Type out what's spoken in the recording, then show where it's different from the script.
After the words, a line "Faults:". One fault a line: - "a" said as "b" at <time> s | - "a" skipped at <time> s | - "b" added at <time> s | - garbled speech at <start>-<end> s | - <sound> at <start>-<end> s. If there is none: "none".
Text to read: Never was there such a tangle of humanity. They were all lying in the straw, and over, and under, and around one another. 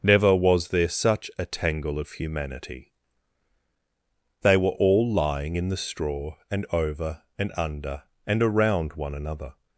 Never was there such a tangle of humanity. They were all lying in the straw, and over, and under, and around one another.
Faults:
none